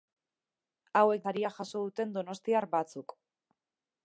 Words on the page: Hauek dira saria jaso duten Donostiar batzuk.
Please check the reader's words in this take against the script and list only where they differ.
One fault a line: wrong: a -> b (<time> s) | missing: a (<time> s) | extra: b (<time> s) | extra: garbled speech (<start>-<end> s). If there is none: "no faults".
missing: dira (1.3 s)